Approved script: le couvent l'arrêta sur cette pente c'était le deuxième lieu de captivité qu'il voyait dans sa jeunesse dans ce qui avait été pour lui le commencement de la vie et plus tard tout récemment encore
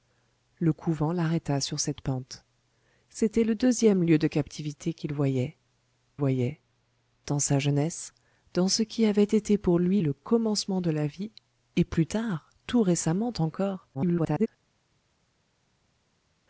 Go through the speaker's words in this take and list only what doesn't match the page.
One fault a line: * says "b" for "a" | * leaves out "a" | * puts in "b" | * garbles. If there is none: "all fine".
* puts in "voyait"
* garbles